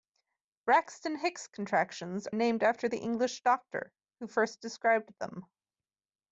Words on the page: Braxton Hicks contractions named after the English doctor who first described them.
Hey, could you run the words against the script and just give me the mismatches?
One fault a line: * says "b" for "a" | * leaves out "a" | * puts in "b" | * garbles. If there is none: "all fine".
all fine